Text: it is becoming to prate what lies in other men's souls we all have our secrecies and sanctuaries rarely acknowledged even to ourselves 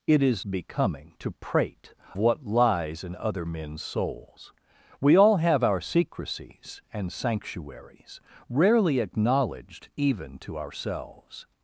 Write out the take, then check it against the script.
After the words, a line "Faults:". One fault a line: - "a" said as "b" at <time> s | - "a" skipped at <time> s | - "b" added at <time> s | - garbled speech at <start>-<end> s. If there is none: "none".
it is becoming to prate what lies in other men's souls we all have our secrecies and sanctuaries rarely acknowledged even to ourselves
Faults:
none